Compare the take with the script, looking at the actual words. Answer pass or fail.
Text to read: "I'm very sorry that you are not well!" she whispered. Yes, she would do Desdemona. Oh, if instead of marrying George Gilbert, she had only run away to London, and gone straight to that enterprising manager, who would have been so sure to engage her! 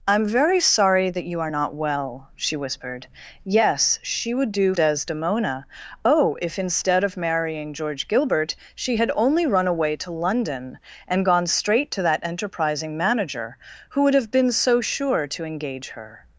pass